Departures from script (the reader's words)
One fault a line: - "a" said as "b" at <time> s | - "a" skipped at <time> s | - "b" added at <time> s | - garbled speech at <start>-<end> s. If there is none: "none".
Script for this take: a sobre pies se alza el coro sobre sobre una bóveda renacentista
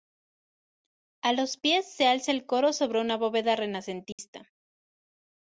- "sobre" said as "los" at 1.3 s
- "sobre" skipped at 3.0 s